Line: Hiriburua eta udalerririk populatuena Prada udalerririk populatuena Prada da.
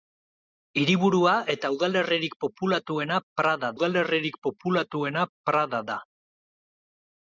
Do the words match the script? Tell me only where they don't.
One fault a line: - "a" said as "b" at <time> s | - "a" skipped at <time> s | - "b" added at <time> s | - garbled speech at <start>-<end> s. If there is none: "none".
none